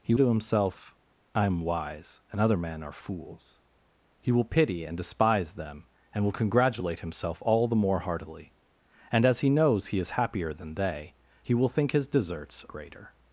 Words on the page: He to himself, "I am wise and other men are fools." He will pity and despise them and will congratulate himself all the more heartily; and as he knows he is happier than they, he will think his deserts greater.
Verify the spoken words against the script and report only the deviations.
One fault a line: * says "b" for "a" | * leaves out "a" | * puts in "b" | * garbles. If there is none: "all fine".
all fine